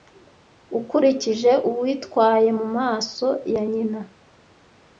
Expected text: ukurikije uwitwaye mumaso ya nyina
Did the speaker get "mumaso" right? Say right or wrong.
right